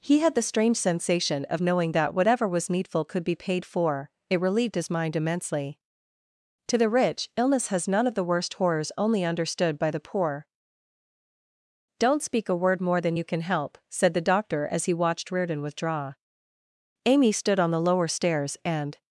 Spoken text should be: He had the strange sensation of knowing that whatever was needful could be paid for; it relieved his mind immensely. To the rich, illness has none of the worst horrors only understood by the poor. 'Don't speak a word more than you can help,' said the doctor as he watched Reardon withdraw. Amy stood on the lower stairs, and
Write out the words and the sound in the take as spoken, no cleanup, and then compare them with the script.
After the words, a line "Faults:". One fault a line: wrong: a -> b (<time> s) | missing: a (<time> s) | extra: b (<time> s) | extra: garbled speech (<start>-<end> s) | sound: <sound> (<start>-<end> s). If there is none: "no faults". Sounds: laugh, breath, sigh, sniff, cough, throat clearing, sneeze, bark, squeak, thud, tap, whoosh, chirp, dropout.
He had the strange sensation of knowing that whatever was needful could be paid for; it relieved his mind immensely. To the rich, illness has none of the worst horrors only understood by the poor. 'Don't speak a word more than you can help,' said the doctor as he watched Reardon withdraw. Amy stood on the lower stairs, and
Faults:
no faults